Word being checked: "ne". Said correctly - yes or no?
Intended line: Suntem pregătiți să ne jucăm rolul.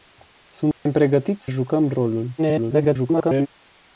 no